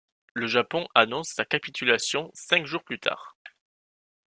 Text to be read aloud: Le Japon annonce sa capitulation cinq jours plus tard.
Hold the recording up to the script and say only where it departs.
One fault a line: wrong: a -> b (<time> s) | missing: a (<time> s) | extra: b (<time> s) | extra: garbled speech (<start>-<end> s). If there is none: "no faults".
no faults